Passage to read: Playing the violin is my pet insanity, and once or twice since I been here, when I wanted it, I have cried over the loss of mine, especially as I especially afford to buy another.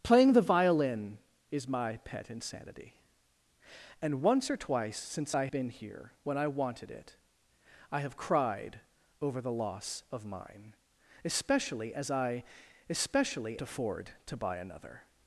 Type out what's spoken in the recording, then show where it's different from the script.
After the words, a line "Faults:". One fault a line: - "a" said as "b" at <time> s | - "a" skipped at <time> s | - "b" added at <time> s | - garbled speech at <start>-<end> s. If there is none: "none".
Playing the violin is my pet insanity, and once or twice since I been here, when I wanted it, I have cried over the loss of mine, especially as I especially afford to buy another.
Faults:
none